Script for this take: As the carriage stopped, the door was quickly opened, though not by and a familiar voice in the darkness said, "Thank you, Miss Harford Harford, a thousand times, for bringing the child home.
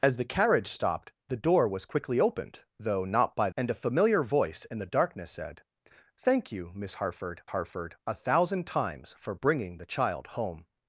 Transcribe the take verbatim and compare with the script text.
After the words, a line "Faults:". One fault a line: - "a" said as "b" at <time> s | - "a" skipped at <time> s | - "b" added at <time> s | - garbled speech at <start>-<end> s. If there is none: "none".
As the carriage stopped, the door was quickly opened, though not by and a familiar voice in the darkness said, "Thank you, Miss Harford Harford, a thousand times, for bringing the child home.
Faults:
none